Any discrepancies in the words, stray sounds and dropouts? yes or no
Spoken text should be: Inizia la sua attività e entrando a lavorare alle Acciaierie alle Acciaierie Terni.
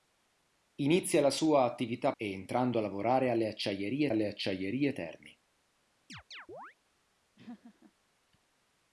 yes